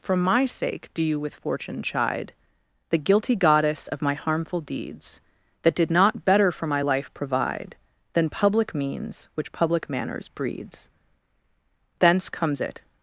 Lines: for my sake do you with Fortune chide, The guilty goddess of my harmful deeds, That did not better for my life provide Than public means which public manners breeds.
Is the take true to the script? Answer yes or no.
no